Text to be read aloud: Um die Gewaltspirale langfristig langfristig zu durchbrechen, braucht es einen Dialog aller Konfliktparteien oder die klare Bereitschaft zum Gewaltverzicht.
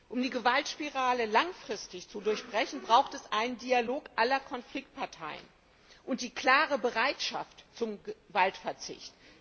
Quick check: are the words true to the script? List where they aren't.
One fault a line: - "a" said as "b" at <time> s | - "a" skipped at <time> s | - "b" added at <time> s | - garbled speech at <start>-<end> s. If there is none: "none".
- "langfristig" skipped at 2.1 s
- "oder" said as "und" at 6.0 s